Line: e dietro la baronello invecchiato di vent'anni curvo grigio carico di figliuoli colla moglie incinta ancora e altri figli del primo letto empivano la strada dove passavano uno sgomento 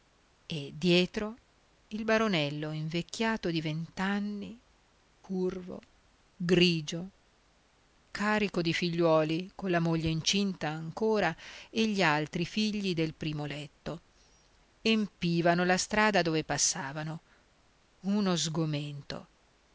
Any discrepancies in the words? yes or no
yes